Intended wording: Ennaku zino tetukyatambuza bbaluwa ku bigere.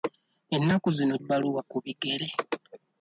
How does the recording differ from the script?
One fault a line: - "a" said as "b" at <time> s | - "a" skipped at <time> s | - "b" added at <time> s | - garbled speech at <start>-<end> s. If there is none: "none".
- "tetukyatambuza" skipped at 1.1 s